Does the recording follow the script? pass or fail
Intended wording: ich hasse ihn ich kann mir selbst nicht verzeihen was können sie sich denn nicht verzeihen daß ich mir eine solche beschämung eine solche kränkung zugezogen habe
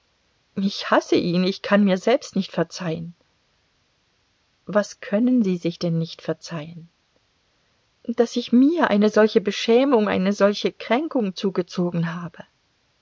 pass